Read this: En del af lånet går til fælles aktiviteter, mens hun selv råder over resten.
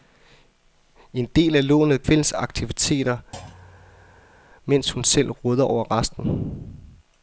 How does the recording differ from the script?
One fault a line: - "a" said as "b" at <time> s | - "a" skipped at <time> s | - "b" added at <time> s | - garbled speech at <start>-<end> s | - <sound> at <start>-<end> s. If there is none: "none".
- "går til" skipped at 2.0 s
- thud at 3.3-4.4 s